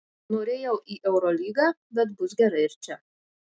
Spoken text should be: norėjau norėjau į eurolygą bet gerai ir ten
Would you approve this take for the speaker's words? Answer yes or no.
no